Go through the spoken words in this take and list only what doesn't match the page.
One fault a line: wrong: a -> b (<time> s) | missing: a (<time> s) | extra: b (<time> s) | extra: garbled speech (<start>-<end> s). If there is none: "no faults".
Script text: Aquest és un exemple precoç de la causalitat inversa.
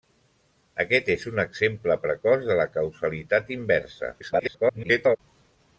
extra: garbled speech (4.2-5.2 s)